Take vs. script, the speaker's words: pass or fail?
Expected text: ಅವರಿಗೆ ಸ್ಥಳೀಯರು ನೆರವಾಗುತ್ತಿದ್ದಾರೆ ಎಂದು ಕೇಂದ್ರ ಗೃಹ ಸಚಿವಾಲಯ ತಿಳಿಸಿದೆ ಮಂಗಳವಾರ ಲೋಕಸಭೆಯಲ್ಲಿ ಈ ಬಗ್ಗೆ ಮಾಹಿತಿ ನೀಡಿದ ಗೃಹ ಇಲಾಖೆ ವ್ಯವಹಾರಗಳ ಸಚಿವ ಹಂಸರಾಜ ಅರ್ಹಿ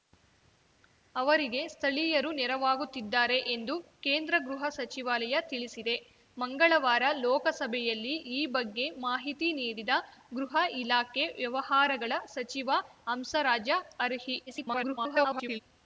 fail